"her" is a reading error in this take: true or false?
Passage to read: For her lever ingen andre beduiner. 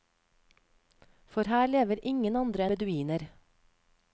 false